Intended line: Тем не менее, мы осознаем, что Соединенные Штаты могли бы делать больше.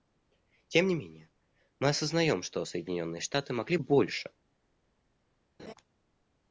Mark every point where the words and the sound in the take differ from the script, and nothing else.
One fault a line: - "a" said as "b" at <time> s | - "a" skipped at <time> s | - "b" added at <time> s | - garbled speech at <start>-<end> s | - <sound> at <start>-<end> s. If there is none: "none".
- "бы делать" skipped at 3.8 s
- laugh at 5.6-5.7 s